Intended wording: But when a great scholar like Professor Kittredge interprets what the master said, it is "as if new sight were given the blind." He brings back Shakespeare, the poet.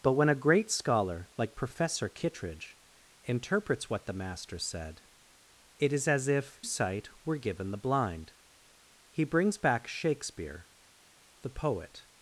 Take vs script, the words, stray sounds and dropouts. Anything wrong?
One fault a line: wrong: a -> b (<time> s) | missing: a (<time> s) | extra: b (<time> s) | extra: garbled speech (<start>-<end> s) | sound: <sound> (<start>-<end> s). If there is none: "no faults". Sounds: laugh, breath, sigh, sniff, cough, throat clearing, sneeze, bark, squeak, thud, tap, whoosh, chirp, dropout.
missing: new (6.6 s)